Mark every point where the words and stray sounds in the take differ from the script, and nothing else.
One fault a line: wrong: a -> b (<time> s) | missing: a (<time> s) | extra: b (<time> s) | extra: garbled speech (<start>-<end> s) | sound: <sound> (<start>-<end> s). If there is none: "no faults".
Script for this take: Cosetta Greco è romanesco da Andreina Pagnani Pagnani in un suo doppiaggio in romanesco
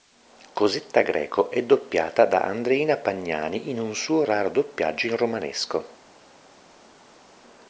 wrong: romanesco -> doppiata (1.6 s)
missing: Pagnani (3.7 s)
extra: raro (4.2 s)